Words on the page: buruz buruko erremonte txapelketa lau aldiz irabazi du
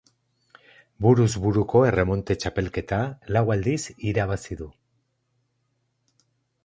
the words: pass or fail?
pass